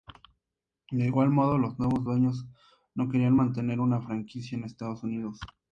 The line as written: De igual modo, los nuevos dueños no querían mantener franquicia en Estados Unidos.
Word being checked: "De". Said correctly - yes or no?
yes